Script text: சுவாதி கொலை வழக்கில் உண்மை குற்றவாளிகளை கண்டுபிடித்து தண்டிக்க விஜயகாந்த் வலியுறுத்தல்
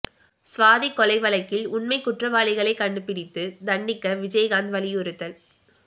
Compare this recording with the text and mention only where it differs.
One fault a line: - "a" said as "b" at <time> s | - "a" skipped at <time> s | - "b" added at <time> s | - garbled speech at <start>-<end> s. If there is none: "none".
none